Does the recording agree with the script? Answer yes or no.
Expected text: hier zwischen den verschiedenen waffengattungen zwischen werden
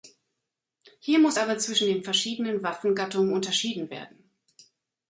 no